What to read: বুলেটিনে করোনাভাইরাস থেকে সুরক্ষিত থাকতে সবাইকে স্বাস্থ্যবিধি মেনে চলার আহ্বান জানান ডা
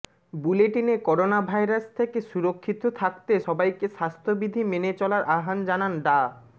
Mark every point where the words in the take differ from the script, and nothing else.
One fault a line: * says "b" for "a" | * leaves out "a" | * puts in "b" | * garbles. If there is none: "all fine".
all fine